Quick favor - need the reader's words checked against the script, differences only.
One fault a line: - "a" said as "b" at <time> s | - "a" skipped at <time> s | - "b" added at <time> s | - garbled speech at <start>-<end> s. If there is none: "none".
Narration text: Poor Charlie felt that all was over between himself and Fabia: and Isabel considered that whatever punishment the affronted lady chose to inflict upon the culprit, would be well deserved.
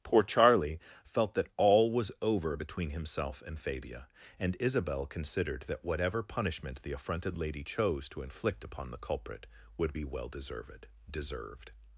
- "deserved" added at 11.1 s